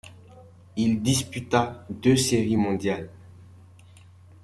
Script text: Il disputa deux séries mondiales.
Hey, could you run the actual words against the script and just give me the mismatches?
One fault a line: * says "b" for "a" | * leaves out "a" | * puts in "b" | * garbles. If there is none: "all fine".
all fine